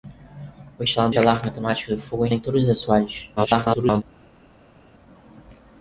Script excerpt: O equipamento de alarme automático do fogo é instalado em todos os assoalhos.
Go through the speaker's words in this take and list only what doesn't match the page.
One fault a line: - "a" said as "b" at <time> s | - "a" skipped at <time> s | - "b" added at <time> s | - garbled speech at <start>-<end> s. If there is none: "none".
- "equipamento" said as "instalado" at 0.8 s
- "instalado" skipped at 2.3 s
- garbled speech at 3.4-4.0 s